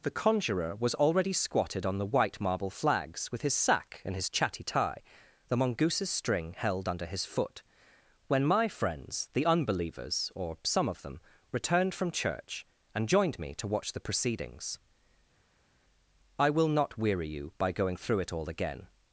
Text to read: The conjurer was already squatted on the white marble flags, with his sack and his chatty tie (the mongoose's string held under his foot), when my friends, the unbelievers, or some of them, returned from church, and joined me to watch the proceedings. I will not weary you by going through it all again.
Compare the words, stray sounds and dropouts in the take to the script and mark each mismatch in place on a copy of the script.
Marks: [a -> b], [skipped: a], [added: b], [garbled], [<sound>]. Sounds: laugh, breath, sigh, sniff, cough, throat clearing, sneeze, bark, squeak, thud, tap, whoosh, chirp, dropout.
The conjurer was already squatted on the white marble flags, with his sack and his chatty tie (the mongoose's string held under his foot), when my friends, the unbelievers, or some of them, returned from church, and joined me to watch the proceedings. I will not weary you by going through it all again.